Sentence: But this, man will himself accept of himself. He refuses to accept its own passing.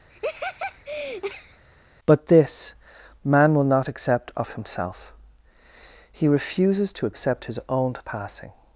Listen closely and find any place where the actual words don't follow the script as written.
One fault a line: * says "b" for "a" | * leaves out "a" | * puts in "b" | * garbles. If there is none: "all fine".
* says "not" for "himself"
* says "his" for "its"